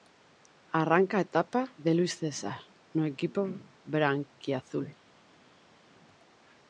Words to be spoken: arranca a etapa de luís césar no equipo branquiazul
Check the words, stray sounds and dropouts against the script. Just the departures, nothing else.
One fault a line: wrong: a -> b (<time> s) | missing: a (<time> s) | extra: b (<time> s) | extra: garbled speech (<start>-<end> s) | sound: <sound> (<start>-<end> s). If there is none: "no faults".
no faults